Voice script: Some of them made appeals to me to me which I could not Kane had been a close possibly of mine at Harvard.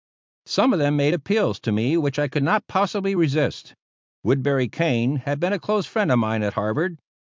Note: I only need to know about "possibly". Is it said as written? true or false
false